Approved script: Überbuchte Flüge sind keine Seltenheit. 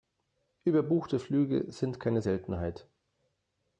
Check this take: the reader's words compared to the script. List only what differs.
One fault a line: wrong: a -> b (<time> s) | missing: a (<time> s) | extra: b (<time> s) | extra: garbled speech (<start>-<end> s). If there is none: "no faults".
no faults